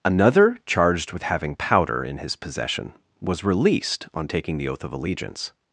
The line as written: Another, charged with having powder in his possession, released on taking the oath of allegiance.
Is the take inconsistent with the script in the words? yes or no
yes